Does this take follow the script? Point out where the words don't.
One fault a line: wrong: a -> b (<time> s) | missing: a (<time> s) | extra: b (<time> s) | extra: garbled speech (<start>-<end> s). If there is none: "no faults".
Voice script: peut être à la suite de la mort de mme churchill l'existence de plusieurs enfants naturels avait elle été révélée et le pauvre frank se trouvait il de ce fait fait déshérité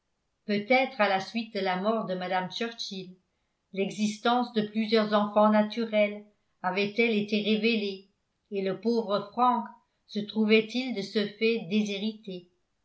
missing: fait (11.7 s)